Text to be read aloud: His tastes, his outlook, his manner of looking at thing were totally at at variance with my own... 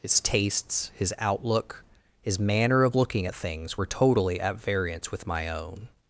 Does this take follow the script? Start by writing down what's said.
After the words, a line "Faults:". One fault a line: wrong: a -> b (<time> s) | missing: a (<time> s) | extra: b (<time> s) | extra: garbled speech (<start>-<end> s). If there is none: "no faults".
His tastes, his outlook, his manner of looking at things were totally at variance with my own...
Faults:
wrong: thing -> things (3.3 s)
missing: at (4.6 s)